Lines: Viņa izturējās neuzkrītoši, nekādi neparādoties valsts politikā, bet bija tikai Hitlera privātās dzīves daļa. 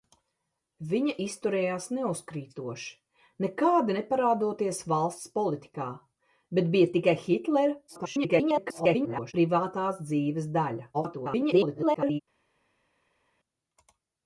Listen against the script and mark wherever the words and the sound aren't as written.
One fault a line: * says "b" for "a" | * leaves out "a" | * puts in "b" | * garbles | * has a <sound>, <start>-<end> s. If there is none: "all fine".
* garbles
* garbles